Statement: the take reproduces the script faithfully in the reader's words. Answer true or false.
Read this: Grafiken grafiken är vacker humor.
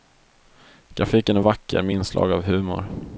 false